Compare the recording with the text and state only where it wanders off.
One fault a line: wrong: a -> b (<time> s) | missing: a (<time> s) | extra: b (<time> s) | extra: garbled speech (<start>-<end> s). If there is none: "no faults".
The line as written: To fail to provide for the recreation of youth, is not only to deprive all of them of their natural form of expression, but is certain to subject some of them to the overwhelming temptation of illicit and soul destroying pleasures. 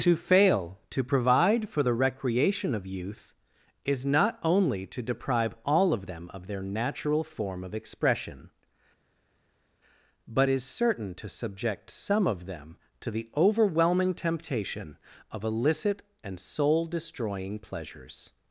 no faults